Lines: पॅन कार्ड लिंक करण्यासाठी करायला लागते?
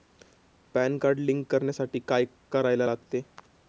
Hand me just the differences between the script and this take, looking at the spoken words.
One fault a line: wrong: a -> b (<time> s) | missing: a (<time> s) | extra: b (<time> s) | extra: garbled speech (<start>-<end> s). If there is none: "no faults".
extra: काय (2.0 s)